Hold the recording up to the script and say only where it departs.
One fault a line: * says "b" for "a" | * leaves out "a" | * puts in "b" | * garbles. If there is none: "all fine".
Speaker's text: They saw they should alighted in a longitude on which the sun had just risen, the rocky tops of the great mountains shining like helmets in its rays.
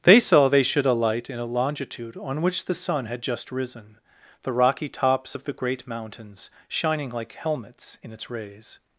* says "alight" for "alighted"